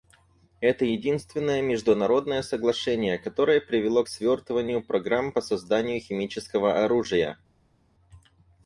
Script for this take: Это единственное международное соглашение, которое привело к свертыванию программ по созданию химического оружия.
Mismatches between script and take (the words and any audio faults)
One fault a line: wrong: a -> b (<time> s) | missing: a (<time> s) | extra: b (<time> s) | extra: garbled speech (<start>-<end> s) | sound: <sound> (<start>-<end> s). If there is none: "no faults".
no faults